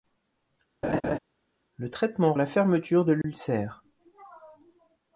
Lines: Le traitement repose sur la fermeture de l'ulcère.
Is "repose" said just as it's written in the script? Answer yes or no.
no